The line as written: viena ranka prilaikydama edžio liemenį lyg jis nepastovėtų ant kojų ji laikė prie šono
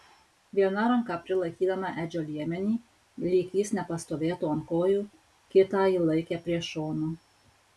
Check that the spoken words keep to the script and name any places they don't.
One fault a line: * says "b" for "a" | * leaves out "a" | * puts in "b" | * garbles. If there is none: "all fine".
* puts in "kitą"